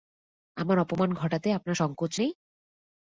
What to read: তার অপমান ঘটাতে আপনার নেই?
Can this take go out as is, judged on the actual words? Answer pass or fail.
fail